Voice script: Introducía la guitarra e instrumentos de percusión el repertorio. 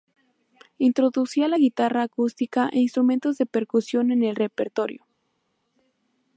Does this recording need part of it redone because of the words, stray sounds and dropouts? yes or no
yes